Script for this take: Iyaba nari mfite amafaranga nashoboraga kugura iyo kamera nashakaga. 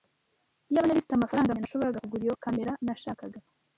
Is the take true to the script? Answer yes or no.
yes